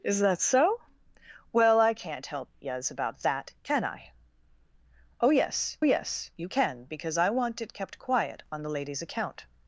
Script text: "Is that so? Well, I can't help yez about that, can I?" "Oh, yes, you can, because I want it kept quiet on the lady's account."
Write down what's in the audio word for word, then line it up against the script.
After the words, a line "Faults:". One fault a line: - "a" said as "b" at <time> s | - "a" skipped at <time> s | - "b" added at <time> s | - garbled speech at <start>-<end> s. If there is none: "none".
"Is that so? Well, I can't help yez about that, can I?" "Oh, yes yes, you can, because I want it kept quiet on the lady's account."
Faults:
- "yes" added at 5.8 s